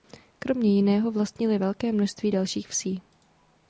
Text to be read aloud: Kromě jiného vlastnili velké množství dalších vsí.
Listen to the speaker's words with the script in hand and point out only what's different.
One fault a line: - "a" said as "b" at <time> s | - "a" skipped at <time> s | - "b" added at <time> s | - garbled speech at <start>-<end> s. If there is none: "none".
none